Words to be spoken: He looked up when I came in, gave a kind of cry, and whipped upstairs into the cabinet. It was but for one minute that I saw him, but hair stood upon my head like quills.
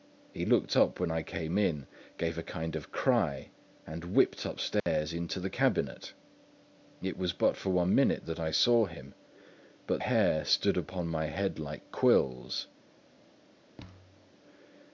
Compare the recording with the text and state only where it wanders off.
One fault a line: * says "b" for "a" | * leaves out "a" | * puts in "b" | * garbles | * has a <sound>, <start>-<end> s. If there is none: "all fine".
* has a dropout, 4.8-4.9 s
* has a thud, 13.8-14.3 s